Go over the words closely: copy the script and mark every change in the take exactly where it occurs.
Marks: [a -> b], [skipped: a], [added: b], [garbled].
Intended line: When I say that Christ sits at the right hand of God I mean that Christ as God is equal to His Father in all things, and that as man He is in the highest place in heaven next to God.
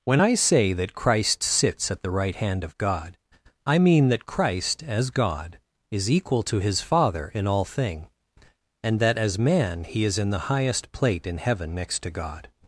When I say that Christ sits at the right hand of God I mean that Christ as God is equal to His Father in all [things, -> thing] and that as man He is in the highest [place -> plate] in heaven next to God.